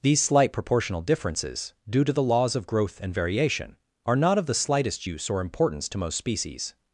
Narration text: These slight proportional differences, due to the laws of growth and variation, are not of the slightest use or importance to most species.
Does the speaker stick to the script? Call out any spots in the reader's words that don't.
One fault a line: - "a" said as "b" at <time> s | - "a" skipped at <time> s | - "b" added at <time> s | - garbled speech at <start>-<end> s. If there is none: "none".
none